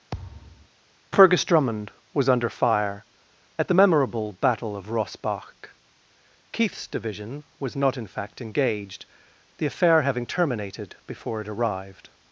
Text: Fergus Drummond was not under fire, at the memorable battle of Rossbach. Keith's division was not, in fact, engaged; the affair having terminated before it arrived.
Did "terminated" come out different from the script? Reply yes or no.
no